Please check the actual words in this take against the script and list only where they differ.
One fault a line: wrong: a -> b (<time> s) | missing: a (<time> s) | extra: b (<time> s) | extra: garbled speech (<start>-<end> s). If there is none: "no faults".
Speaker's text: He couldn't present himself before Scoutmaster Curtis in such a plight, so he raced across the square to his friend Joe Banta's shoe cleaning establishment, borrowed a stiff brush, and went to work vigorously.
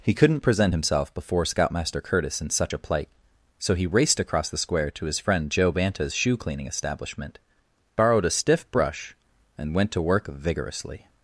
no faults